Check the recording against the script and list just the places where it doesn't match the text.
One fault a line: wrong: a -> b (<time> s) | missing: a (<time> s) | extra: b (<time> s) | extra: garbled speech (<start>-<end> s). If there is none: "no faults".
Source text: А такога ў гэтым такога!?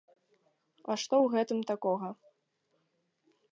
wrong: такога -> што (1.0 s)